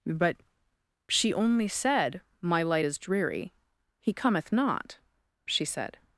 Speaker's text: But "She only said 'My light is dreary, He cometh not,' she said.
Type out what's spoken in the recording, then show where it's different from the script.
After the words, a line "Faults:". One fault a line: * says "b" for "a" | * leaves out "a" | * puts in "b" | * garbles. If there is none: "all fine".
But "She only said 'My light is dreary, He cometh not,' she said.
Faults:
all fine